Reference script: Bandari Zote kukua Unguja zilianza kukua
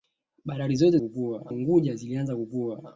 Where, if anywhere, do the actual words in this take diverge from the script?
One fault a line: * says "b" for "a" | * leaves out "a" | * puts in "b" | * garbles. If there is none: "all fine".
all fine